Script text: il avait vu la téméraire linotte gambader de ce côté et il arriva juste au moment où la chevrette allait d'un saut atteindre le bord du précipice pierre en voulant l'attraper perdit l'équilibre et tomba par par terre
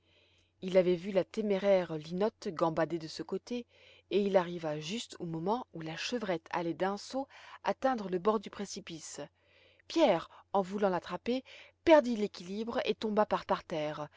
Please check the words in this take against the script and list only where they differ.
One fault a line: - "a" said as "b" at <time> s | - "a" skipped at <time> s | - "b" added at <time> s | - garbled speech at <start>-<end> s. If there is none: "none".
none